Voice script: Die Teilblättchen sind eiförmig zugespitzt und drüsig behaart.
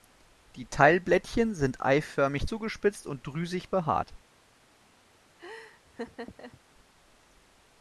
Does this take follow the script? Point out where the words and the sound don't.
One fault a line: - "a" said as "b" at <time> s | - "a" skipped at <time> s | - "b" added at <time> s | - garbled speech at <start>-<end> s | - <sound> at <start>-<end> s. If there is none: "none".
- laugh at 5.4-6.6 s